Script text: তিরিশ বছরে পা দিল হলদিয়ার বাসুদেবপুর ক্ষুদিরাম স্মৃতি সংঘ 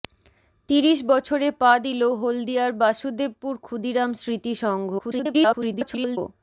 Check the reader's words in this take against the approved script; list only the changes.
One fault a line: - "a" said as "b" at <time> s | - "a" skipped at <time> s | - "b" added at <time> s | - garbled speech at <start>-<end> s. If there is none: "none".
- garbled speech at 5.0-6.2 s